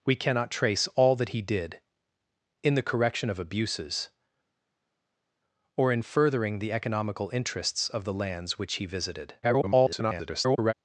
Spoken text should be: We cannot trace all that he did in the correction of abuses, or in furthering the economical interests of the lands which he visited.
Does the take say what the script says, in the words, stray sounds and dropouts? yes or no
no